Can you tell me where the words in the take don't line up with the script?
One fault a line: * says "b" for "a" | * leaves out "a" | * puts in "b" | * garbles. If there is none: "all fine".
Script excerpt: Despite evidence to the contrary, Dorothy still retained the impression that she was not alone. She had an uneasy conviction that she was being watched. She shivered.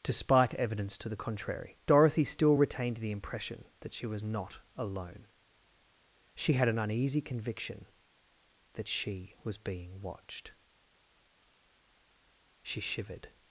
all fine